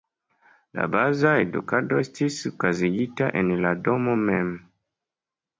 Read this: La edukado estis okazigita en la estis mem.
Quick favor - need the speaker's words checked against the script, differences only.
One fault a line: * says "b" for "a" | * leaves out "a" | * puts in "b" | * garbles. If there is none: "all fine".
* puts in "baza"
* says "domo" for "estis"